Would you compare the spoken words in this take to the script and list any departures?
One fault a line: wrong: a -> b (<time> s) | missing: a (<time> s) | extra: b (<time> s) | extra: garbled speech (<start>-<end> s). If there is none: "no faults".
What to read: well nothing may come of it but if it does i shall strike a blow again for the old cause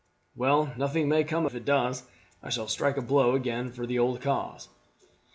missing: of it but (1.4 s)